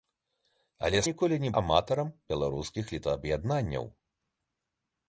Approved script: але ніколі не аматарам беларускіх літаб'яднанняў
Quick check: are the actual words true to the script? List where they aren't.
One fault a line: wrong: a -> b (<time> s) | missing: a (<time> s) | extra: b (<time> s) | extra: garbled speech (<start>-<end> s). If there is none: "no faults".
no faults